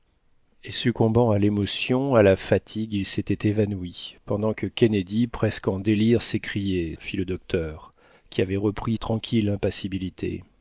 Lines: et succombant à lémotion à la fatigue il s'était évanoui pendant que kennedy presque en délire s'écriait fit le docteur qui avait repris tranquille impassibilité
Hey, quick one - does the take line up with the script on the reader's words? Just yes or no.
yes